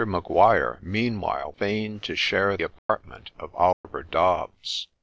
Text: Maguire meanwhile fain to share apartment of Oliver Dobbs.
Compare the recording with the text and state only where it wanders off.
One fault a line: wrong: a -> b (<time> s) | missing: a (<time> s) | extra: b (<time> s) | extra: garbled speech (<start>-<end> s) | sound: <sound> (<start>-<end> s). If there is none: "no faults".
sound: dropout (2.8-2.9 s)
sound: dropout (3.7-3.8 s)